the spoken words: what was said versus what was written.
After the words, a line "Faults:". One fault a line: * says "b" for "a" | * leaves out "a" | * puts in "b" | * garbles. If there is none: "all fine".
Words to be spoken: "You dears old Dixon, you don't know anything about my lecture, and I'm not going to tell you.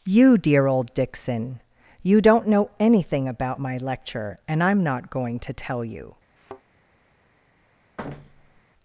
"You dear old Dixon, you don't know anything about my lecture, and I'm not going to tell you.
Faults:
* says "dear" for "dears"